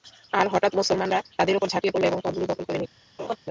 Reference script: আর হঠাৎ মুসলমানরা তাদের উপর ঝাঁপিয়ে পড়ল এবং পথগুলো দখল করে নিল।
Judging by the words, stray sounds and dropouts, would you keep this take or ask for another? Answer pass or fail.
fail